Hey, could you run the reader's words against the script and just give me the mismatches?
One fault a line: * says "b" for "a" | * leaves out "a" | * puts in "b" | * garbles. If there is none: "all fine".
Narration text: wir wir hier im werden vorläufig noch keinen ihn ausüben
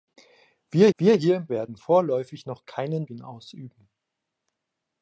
all fine